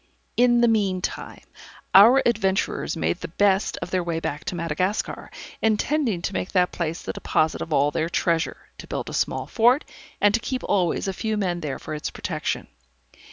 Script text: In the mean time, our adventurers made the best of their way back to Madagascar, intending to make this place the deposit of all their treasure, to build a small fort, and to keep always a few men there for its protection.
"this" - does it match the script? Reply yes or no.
no